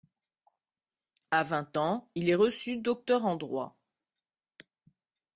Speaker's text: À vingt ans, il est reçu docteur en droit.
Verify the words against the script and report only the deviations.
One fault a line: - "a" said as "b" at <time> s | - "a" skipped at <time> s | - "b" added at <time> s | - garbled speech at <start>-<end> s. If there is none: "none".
none